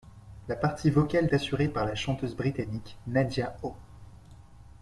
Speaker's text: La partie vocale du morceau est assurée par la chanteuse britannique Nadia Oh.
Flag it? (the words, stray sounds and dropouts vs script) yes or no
yes